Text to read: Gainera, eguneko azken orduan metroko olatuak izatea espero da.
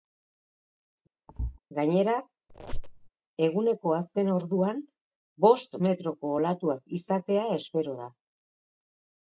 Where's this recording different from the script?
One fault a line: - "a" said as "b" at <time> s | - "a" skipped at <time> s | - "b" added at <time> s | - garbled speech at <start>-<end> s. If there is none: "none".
- "bost" added at 5.5 s